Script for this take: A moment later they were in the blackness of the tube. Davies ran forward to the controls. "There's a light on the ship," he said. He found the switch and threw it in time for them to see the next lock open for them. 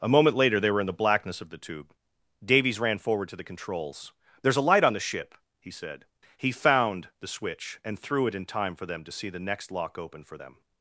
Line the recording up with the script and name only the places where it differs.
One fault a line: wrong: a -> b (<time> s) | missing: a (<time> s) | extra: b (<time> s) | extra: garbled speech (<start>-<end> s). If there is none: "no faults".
no faults